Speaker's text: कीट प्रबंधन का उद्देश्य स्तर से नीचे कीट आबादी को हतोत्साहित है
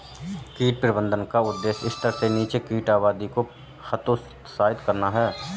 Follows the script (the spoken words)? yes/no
no